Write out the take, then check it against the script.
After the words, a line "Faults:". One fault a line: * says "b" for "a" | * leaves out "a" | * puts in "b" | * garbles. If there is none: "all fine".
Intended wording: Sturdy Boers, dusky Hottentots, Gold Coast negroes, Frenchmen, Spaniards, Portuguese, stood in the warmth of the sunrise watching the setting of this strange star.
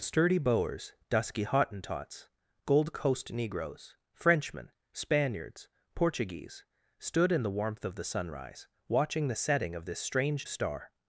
Sturdy Boers, dusky Hottentots, Gold Coast negroes, Frenchmen, Spaniards, Portuguese, stood in the warmth of the sunrise watching the setting of this strange star.
Faults:
all fine